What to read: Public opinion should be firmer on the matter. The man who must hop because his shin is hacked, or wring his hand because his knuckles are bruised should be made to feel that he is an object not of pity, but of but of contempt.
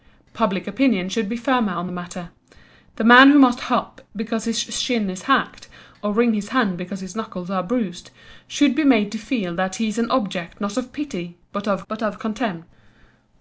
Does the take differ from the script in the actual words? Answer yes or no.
no